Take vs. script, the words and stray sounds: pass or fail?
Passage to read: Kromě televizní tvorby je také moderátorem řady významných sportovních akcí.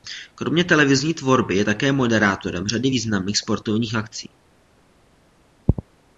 pass